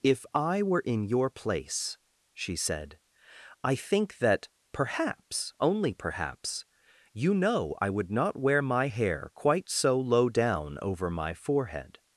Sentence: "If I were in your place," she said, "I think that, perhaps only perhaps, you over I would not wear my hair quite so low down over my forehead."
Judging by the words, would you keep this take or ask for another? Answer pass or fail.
fail